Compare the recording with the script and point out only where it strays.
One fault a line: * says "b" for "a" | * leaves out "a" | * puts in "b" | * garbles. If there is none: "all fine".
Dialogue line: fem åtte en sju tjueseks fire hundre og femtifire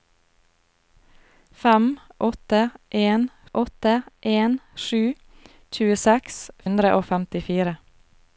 * puts in "åtte en"
* leaves out "fire"